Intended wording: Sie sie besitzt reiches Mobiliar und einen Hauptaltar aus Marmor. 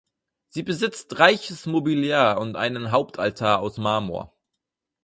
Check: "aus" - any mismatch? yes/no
no